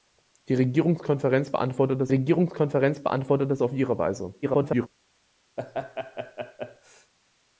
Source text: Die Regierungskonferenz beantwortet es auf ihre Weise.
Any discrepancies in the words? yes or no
yes